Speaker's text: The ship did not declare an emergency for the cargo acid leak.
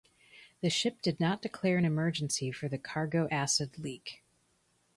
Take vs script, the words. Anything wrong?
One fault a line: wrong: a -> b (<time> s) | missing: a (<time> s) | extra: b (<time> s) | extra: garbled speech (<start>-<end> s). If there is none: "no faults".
no faults